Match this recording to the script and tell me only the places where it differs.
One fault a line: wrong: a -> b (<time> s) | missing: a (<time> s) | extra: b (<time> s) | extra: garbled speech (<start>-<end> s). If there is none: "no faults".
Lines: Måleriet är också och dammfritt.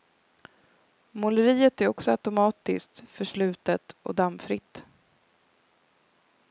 extra: automatiskt förslutet (2.1 s)